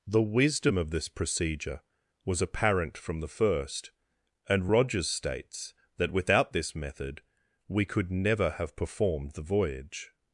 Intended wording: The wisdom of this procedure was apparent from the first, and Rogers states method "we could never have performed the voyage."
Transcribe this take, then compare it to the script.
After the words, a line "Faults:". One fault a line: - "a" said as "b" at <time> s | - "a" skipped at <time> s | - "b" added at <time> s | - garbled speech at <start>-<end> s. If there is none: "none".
The wisdom of this procedure was apparent from the first, and Rogers states that without this method "we could never have performed the voyage."
Faults:
- "that without this" added at 6.0 s